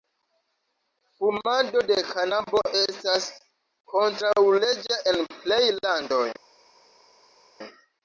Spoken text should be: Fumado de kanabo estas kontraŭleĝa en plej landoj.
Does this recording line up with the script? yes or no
yes